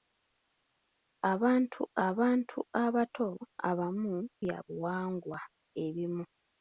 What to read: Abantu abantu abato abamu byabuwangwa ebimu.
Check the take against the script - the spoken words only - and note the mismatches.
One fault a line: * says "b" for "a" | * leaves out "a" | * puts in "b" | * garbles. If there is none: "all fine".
all fine